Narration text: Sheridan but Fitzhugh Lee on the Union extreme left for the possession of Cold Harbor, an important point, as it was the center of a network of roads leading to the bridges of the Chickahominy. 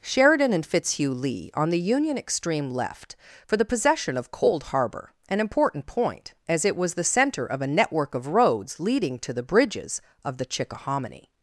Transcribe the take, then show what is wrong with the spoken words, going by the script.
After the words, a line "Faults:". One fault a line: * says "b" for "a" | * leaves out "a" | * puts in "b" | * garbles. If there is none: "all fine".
Sheridan and Fitzhugh Lee on the Union extreme left for the possession of Cold Harbor, an important point, as it was the center of a network of roads leading to the bridges of the Chickahominy.
Faults:
* says "and" for "but"